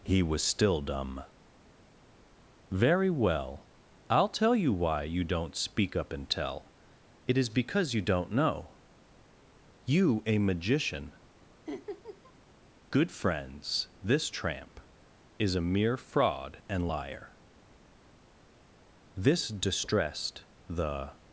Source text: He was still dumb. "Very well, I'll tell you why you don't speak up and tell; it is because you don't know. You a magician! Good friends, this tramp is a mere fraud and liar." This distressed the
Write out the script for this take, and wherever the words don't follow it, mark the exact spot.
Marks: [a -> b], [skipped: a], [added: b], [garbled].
He was still dumb. "Very well, I'll tell you why you don't speak up and tell; it is because you don't know. You a magician! Good friends, this tramp is a mere fraud and liar." This distressed the